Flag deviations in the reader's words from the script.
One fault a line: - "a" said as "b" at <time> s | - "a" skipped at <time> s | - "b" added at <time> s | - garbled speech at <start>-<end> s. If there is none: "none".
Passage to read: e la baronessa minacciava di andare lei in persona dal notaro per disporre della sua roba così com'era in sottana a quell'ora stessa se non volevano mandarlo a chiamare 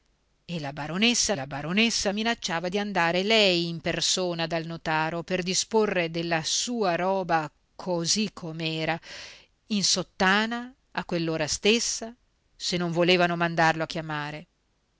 - "la baronessa" added at 1.3 s